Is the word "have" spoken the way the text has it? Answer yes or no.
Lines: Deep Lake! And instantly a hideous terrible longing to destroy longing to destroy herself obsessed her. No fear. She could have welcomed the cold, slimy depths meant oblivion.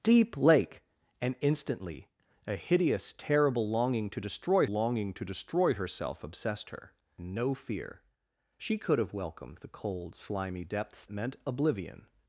yes